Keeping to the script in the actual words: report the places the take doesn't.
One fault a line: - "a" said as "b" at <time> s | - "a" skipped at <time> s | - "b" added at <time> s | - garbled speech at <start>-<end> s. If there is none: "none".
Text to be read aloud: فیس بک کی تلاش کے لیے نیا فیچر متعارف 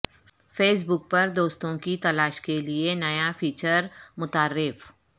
- "پر دوستوں" added at 1.1 s